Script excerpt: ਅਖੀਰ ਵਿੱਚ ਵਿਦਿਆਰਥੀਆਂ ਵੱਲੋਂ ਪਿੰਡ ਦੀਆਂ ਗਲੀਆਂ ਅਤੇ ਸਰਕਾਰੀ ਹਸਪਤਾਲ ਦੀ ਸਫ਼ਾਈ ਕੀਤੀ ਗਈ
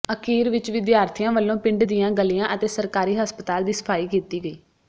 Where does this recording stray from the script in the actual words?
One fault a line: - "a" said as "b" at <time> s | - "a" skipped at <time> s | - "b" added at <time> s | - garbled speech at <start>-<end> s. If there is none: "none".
none